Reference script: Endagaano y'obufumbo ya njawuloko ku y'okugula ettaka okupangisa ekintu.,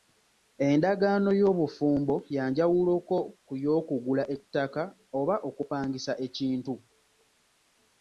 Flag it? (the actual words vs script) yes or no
yes